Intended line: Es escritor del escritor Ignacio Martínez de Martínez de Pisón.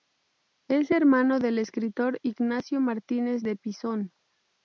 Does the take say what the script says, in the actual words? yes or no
no